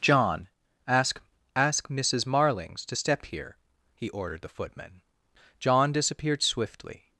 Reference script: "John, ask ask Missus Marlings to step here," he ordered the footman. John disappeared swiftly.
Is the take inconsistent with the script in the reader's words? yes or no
no